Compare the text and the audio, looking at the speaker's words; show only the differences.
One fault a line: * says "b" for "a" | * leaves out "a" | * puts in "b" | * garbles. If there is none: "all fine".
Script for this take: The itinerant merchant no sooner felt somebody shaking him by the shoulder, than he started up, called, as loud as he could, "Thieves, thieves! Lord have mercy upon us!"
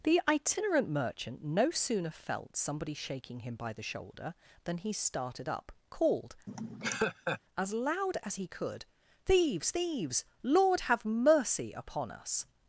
all fine